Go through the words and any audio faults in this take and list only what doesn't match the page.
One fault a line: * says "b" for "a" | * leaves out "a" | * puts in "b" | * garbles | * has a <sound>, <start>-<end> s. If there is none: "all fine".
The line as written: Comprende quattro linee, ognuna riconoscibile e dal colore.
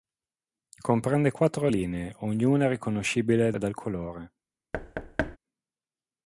* has a thud, 4.7-5.4 s